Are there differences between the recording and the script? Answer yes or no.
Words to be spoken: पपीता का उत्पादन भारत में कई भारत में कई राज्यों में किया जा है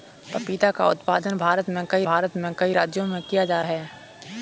no